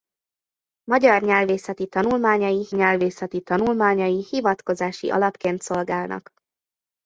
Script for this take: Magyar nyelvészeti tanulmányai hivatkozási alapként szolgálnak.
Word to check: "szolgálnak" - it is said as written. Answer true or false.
true